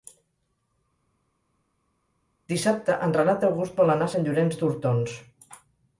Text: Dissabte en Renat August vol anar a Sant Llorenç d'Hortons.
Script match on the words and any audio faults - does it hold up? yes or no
yes